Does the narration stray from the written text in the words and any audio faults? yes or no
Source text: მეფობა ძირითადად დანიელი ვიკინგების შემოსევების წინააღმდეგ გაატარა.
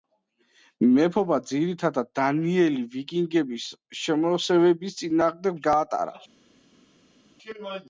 no